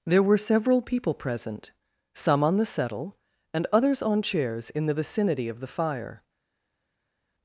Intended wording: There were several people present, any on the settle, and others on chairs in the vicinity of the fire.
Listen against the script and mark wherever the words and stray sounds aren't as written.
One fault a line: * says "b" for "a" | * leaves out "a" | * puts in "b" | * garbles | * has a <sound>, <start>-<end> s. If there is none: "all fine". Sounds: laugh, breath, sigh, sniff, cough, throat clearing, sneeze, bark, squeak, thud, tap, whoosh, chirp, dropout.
* says "some" for "any"